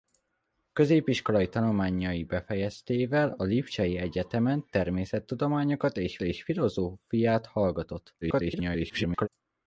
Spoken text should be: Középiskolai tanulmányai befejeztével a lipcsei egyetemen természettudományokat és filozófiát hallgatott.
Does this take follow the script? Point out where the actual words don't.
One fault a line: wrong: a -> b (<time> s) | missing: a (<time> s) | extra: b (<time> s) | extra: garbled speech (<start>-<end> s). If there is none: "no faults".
extra: és (6.2 s)
extra: garbled speech (8.2-9.3 s)